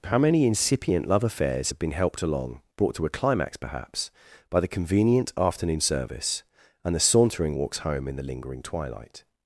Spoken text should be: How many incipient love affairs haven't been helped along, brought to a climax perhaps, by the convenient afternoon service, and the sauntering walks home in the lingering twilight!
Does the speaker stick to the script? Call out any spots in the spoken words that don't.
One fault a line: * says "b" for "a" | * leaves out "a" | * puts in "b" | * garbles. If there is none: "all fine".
* says "have" for "haven't"